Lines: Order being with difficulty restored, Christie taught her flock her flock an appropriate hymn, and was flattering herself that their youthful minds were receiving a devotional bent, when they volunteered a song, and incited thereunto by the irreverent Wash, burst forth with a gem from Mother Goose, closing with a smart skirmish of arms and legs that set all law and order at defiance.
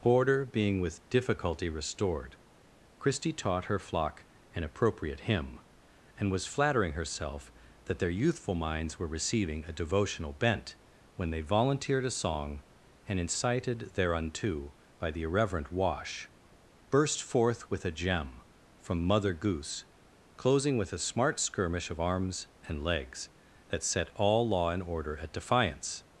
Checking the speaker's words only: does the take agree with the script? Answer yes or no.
no